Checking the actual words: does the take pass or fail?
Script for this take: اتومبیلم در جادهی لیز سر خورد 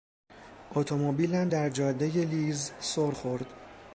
pass